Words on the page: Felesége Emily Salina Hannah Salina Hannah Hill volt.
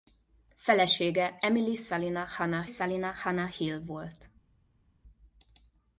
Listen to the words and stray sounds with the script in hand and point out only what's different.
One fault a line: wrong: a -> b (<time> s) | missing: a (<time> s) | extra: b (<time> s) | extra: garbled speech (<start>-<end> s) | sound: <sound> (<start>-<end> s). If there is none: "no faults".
no faults